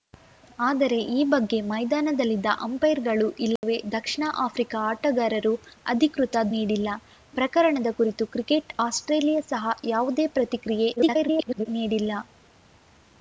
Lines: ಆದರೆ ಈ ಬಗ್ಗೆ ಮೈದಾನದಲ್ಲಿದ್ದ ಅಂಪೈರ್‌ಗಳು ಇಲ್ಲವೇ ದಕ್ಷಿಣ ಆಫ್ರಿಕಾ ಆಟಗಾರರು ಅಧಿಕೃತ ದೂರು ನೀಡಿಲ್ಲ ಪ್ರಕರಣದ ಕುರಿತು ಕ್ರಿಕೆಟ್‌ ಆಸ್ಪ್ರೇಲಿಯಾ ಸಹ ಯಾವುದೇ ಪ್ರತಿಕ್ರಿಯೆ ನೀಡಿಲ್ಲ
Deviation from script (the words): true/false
true